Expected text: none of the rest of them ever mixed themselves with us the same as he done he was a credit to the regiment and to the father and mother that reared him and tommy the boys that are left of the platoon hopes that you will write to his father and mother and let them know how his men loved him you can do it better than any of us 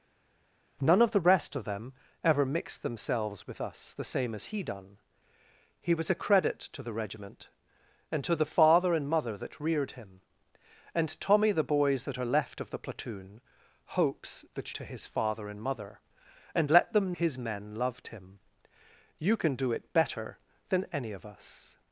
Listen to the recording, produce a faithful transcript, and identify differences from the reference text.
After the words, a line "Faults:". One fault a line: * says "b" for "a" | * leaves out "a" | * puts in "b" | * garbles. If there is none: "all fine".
none of the rest of them ever mixed themselves with us the same as he done he was a credit to the regiment and to the father and mother that reared him and tommy the boys that are left of the platoon hopes that to his father and mother and let them his men loved him you can do it better than any of us
Faults:
* leaves out "you will write"
* leaves out "know how"